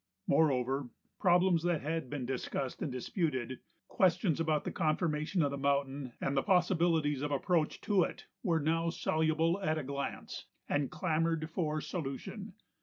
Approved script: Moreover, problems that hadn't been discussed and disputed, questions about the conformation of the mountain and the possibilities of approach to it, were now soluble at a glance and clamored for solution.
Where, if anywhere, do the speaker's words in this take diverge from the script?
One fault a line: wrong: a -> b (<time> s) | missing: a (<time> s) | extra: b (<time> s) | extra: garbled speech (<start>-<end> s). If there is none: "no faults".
wrong: hadn't -> had (1.8 s)